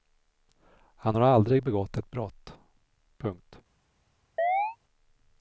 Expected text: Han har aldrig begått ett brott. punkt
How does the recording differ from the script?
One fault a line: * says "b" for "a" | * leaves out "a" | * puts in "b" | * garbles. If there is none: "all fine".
all fine